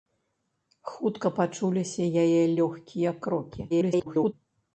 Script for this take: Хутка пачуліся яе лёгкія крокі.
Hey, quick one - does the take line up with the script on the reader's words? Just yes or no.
no